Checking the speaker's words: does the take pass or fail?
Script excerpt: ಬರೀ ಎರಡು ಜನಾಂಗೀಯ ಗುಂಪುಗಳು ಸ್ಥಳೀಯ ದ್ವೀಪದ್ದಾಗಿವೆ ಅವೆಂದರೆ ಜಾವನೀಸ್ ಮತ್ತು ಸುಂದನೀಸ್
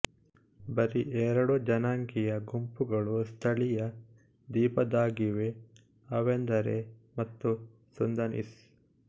fail